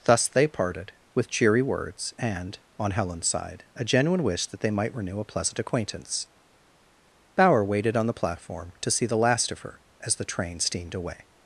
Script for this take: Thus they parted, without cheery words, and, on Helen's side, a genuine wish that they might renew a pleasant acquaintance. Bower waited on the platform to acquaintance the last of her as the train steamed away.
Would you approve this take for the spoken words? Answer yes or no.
no